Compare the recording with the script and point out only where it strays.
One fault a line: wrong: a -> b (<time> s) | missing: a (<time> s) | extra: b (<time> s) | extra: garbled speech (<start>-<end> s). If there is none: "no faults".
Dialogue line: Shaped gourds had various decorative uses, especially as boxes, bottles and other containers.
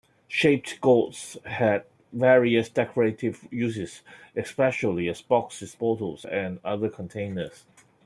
no faults